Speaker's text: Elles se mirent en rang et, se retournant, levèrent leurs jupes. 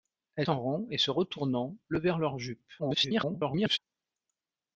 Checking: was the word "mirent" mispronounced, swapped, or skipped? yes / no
yes